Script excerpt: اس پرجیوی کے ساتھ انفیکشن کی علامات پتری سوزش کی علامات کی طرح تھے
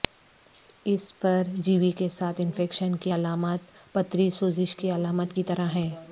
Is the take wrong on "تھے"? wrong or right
wrong